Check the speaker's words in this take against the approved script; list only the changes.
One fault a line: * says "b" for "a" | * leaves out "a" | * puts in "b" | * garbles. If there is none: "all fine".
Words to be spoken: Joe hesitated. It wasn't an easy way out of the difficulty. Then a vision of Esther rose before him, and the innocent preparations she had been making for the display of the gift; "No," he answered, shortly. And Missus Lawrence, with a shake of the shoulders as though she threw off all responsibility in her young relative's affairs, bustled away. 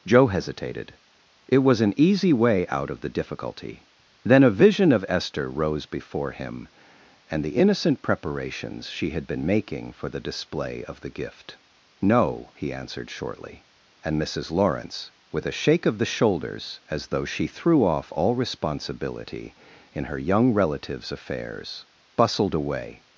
* says "was" for "wasn't"